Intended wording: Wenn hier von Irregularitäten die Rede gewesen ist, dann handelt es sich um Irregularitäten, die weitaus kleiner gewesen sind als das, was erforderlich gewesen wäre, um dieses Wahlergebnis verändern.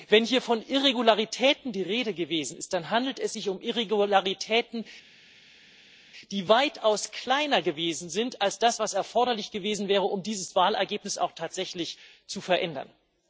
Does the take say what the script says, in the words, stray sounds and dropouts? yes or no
no